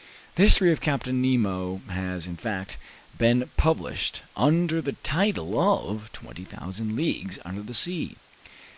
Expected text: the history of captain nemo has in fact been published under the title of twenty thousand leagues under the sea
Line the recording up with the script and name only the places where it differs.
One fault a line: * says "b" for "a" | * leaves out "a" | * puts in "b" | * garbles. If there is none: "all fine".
all fine